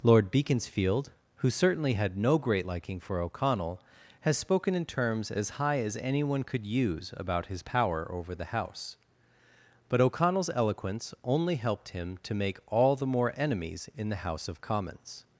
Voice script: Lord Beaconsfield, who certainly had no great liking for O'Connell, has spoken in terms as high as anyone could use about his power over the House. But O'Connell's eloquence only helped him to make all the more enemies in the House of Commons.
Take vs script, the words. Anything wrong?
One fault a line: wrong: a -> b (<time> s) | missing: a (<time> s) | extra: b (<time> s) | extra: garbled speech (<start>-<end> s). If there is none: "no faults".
no faults